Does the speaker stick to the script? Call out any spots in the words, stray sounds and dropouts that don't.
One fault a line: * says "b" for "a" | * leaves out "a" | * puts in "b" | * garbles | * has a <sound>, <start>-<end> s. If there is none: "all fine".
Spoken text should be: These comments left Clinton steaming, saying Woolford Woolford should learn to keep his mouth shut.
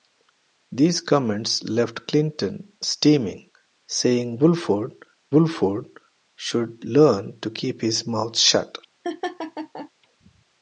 * has a laugh, 9.0-9.9 s